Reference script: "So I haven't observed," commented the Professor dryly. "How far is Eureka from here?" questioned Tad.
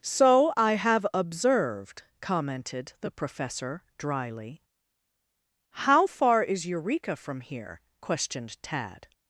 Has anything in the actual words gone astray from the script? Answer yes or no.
yes